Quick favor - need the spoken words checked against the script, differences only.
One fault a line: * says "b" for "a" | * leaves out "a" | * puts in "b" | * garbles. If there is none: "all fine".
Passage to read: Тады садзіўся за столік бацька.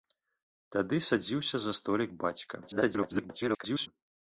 * garbles